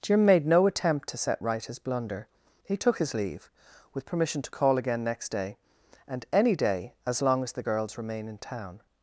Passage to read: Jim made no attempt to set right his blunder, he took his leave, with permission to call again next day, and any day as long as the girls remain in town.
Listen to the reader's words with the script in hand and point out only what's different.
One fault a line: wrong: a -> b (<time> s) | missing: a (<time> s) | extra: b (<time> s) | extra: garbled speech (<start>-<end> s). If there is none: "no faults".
no faults